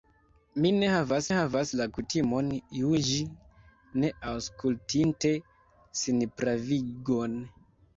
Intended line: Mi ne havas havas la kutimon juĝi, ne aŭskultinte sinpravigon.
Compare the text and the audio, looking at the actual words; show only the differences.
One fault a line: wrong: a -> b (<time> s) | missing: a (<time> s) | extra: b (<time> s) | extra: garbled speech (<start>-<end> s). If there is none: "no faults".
no faults